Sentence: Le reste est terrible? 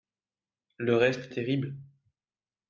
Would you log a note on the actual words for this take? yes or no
no